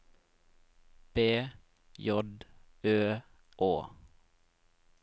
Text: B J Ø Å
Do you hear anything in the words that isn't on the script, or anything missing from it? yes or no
no